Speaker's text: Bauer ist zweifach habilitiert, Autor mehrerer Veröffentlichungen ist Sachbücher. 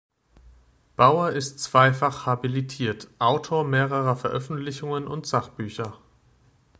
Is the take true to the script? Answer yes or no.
no